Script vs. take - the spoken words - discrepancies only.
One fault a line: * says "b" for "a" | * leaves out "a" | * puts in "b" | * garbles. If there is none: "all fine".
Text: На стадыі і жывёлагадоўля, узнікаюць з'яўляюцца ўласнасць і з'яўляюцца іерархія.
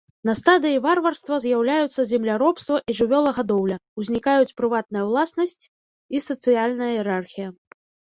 * puts in "варварства з'яўляюцца земляробства"
* says "прыватная" for "з'яўляюцца"
* says "сацыяльная" for "з'яўляюцца"